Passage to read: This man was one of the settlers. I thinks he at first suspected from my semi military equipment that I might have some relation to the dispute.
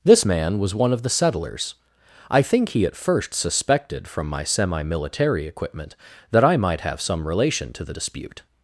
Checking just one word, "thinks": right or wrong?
wrong